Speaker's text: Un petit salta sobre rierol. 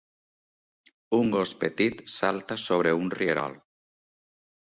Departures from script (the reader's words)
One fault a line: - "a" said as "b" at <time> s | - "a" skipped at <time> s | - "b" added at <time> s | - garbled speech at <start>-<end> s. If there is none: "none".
- "gos" added at 1.4 s
- "un" added at 3.0 s